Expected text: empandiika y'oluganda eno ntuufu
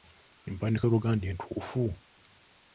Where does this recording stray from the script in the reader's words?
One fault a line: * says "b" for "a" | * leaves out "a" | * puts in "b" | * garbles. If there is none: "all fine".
* leaves out "eno"